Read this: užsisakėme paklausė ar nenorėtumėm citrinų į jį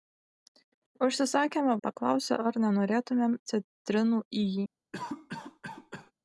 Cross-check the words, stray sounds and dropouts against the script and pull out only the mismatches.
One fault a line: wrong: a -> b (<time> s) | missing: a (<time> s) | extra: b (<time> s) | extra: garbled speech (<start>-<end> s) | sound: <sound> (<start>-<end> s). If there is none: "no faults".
sound: cough (4.9-6.1 s)